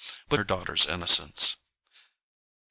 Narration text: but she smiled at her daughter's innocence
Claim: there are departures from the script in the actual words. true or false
true